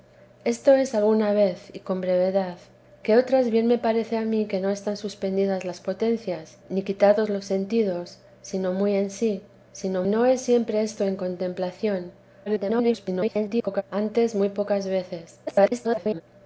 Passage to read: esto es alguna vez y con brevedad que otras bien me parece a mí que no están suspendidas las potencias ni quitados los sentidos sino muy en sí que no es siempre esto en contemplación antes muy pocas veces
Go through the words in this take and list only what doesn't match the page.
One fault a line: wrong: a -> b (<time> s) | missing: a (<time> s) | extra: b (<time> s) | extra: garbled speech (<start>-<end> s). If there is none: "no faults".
wrong: que -> sino (9.7 s)
extra: garbled speech (12.5-13.8 s)
extra: garbled speech (15.5-16.2 s)